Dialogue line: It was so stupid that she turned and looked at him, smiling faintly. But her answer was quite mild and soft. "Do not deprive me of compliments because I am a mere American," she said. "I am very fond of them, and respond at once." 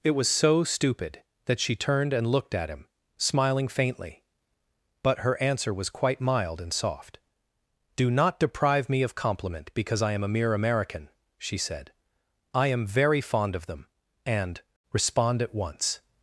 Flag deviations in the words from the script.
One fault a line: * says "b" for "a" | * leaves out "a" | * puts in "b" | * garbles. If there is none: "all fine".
* says "compliment" for "compliments"